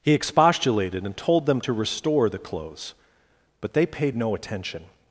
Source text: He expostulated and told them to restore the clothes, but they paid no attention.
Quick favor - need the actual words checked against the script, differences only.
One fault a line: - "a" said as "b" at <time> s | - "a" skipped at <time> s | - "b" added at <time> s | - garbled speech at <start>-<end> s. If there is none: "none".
none